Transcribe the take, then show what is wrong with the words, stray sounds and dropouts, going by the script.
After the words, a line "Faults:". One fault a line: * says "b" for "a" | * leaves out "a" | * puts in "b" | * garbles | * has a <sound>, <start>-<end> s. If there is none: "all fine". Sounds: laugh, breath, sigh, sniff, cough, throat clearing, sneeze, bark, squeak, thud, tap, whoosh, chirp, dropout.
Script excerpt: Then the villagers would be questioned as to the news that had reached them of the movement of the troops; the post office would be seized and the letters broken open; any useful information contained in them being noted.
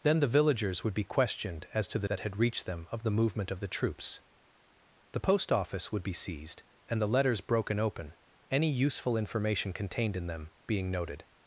Then the villagers would be questioned as to the that had reached them of the movement of the troops; the post office would be seized and the letters broken open; any useful information contained in them being noted.
Faults:
* leaves out "news"